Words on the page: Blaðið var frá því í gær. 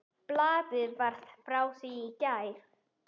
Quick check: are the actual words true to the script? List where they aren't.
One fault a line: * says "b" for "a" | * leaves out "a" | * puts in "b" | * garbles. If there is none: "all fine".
all fine